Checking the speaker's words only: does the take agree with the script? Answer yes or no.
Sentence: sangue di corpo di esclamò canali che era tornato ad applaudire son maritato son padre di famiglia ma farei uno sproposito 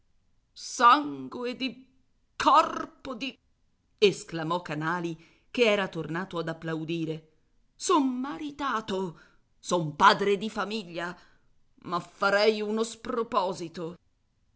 yes